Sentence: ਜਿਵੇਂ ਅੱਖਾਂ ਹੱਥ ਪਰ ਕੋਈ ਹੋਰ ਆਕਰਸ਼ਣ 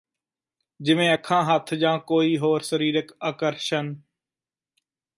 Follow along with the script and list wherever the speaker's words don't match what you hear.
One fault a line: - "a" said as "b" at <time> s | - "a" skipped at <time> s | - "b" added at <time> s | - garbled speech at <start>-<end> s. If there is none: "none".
- "ਪਰ" said as "ਜਾਂ" at 1.7 s
- "ਸਰੀਰਕ" added at 2.6 s